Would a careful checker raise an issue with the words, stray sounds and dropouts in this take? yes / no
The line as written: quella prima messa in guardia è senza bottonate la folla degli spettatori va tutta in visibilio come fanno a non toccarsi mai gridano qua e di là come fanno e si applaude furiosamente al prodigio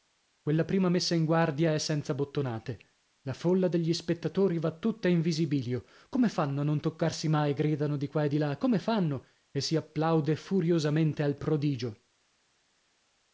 yes